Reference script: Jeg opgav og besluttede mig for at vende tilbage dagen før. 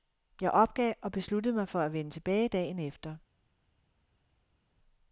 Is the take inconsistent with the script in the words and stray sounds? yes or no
yes